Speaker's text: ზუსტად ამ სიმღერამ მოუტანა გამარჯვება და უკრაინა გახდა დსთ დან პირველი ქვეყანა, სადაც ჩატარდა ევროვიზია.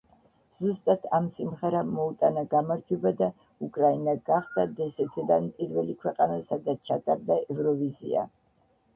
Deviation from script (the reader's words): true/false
false